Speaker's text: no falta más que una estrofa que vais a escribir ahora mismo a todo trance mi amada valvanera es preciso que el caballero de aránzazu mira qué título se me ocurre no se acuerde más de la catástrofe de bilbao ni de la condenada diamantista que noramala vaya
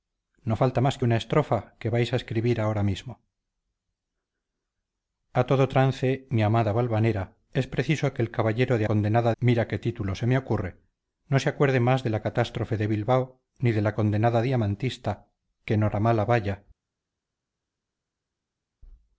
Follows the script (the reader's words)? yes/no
no